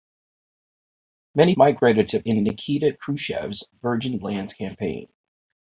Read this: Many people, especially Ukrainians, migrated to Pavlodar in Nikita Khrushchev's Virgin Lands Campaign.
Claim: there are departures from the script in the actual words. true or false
true